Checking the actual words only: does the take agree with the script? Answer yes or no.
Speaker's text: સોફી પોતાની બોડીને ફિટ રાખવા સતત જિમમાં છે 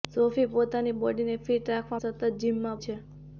yes